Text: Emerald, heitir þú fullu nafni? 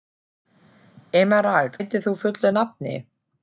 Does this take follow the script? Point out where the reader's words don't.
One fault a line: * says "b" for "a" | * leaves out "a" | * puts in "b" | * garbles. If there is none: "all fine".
all fine